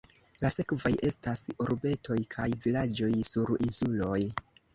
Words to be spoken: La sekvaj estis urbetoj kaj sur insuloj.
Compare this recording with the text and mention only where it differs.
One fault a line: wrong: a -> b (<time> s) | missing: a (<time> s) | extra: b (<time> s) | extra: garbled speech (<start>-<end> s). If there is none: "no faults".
wrong: estis -> estas (1.1 s)
extra: vilaĝoj (2.7 s)